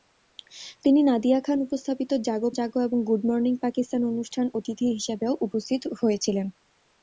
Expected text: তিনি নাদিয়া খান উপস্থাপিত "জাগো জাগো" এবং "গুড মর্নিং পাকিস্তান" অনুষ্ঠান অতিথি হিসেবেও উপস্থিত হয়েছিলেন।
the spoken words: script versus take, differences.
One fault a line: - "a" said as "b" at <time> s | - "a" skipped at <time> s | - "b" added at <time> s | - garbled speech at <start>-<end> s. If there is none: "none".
none